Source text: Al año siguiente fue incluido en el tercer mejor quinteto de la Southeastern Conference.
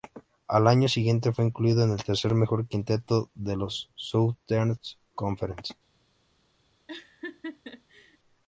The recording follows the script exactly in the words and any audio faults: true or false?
false